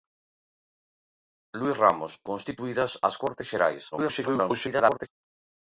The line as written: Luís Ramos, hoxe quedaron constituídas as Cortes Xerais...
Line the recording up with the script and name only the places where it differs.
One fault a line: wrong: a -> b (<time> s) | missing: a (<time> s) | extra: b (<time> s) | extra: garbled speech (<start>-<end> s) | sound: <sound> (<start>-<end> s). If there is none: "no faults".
missing: hoxe quedaron (2.1 s)
extra: garbled speech (3.9-5.1 s)